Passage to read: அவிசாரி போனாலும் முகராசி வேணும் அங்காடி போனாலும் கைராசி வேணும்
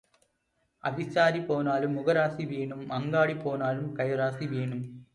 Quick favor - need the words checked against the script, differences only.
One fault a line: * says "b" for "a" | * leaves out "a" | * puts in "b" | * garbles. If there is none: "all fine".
all fine